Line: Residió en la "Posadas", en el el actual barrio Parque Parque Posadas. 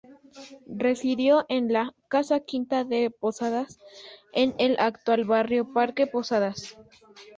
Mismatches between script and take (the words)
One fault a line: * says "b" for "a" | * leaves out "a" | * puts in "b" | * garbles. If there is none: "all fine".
* puts in "casa quinta de"
* leaves out "el"
* leaves out "Parque"